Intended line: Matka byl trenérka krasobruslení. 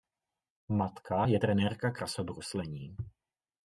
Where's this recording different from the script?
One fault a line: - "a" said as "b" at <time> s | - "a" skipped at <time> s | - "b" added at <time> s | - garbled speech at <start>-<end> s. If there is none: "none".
- "byl" said as "je" at 1.2 s